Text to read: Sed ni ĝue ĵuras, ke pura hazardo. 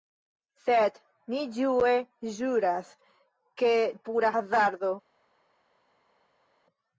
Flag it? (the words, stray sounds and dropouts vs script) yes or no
no